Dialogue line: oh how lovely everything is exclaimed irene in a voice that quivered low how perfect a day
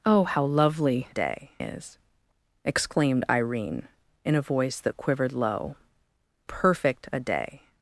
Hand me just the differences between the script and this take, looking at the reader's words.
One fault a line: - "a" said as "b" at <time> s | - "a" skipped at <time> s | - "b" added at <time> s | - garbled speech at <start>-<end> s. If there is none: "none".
- "everything" said as "day" at 1.1 s
- "how" skipped at 5.7 s